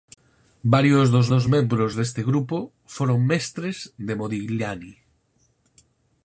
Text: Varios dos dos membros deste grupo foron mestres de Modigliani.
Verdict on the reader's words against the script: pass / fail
pass